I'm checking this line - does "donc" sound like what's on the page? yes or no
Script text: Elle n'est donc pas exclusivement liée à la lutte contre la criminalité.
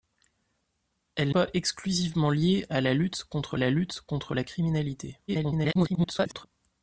no